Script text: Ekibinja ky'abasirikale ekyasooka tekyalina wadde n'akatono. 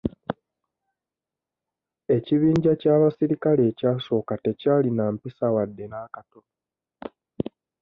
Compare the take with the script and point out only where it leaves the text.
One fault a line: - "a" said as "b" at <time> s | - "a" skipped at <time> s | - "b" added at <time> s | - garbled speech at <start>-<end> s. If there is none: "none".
- "mpisa" added at 5.2 s